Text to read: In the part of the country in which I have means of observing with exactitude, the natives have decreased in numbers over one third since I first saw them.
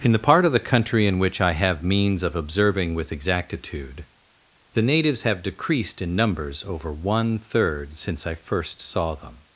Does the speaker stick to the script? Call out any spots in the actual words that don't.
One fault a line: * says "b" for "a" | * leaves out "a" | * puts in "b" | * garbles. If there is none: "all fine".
all fine